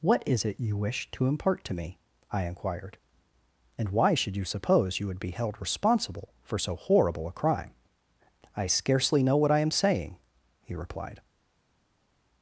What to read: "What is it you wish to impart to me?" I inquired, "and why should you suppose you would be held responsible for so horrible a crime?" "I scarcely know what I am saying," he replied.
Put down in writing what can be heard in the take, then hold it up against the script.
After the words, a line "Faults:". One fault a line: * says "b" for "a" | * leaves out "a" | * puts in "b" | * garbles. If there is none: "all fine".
"What is it you wish to impart to me?" I inquired, "and why should you suppose you would be held responsible for so horrible a crime?" "I scarcely know what I am saying," he replied.
Faults:
all fine